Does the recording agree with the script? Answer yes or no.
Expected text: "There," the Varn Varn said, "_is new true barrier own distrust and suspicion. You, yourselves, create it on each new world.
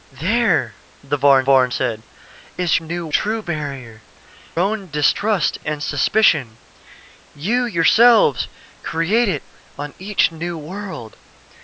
yes